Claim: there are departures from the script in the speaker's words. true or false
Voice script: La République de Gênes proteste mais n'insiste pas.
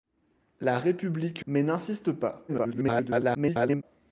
true